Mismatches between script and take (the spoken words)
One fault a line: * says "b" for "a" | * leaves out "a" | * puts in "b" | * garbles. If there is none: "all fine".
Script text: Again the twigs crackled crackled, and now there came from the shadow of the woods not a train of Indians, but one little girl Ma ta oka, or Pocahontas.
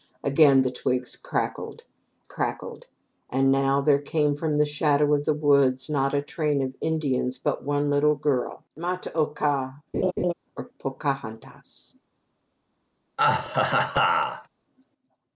all fine